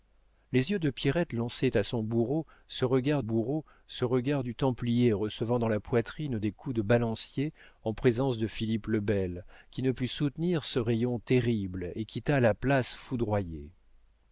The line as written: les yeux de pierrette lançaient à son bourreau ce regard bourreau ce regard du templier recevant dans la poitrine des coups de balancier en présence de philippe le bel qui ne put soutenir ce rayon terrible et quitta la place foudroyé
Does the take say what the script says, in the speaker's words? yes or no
yes